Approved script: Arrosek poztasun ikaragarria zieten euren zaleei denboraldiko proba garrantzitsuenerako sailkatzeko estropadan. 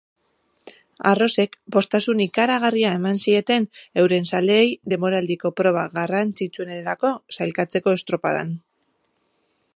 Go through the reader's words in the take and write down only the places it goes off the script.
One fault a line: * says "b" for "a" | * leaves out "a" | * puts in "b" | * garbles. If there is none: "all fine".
* puts in "eman"